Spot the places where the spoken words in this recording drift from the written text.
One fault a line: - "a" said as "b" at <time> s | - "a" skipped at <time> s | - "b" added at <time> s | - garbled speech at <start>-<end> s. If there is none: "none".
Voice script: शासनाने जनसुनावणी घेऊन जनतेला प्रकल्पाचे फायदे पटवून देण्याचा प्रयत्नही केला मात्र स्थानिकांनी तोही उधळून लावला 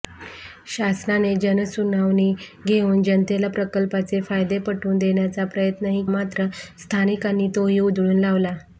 - "केला" skipped at 6.0 s